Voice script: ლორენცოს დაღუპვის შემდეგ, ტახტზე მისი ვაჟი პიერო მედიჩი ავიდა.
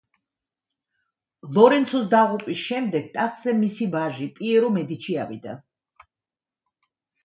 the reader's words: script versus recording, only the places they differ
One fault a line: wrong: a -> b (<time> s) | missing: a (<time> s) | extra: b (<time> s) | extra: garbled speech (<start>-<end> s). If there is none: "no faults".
no faults